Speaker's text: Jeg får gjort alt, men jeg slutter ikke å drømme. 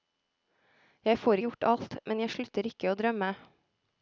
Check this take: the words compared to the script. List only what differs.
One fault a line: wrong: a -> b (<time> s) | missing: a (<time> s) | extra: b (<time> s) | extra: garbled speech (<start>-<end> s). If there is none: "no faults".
no faults